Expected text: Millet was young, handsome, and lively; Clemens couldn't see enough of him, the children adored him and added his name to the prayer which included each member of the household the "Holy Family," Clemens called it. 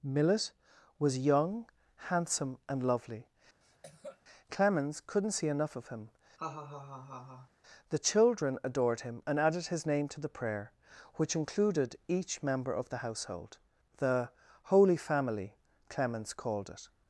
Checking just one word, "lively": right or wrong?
wrong